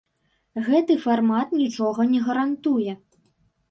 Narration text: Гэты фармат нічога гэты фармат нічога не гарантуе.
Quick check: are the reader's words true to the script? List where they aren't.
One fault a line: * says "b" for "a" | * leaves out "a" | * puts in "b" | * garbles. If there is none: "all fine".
* leaves out "гэты фармат нічога"